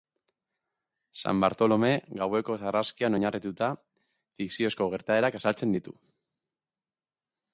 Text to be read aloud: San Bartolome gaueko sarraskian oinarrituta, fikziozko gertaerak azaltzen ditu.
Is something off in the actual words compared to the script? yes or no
no